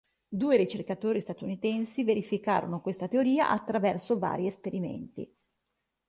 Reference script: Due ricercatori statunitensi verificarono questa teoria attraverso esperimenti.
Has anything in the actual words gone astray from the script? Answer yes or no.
yes